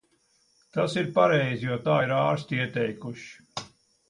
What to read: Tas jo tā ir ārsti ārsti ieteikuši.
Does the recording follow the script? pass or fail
fail